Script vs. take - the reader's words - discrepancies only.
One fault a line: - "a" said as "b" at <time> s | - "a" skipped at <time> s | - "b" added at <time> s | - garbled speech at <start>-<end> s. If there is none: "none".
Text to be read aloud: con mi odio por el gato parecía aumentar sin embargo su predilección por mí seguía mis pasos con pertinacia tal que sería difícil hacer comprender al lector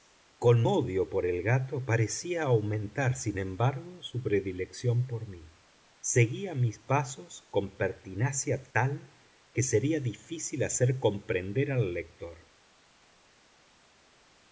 - "mi" skipped at 0.7 s